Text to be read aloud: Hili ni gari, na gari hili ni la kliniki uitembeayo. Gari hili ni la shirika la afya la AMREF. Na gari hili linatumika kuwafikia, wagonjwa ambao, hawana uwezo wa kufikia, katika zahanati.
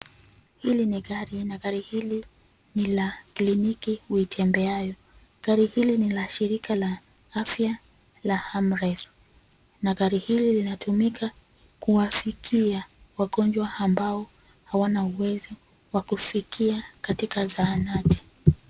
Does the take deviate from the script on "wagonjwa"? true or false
false